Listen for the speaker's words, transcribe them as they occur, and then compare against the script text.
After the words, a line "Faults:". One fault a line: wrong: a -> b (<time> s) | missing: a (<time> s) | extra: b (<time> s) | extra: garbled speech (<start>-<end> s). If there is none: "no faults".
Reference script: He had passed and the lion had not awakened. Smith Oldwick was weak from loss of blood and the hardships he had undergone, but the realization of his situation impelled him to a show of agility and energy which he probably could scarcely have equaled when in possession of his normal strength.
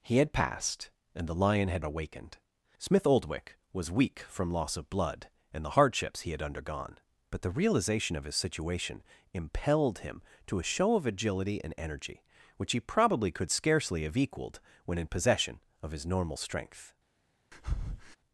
He had passed and the lion had awakened. Smith Oldwick was weak from loss of blood and the hardships he had undergone, but the realization of his situation impelled him to a show of agility and energy which he probably could scarcely have equaled when in possession of his normal strength.
Faults:
missing: not (1.9 s)